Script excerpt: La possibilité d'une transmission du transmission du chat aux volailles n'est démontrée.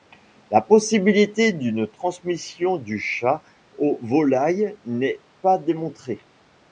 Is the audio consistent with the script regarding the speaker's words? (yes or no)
no